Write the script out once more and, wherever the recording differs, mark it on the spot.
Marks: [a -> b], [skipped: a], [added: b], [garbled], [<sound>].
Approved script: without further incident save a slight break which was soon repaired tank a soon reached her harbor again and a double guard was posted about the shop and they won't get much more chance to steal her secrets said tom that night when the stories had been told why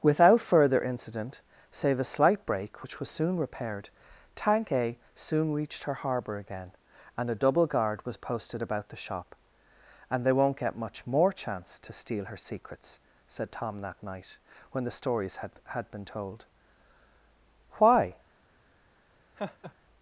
without further incident save a slight break which was soon repaired tank a soon reached her harbor again and a double guard was posted about the shop and they won't get much more chance to steal her secrets said tom that night when the stories had [added: had] been told why [laugh]